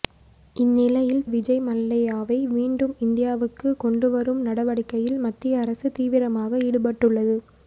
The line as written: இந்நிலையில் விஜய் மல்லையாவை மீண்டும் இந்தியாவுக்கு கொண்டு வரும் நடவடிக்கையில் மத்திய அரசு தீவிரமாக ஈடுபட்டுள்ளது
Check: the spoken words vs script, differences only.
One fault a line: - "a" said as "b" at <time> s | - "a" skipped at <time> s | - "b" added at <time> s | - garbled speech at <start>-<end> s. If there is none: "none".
none